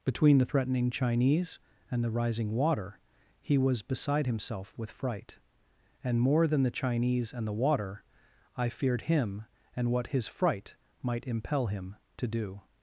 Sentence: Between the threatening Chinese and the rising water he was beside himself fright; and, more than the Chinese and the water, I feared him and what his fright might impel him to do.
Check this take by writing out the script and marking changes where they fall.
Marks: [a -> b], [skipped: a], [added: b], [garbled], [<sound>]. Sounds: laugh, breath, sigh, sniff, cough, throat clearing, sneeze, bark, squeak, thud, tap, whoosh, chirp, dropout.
Between the threatening Chinese and the rising water he was beside himself [added: with] fright; and, more than the Chinese and the water, I feared him and what his fright might impel him to do.